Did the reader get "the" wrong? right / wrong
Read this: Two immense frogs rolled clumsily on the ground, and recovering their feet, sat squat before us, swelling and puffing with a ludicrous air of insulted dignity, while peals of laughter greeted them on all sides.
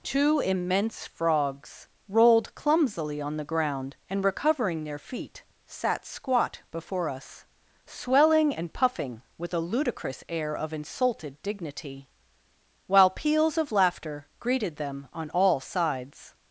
right